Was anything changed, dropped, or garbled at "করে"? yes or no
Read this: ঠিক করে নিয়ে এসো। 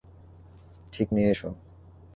yes